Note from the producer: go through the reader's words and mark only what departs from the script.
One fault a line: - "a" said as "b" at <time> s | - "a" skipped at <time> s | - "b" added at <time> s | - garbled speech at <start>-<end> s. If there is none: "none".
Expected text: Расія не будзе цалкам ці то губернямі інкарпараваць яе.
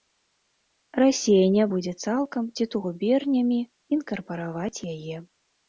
none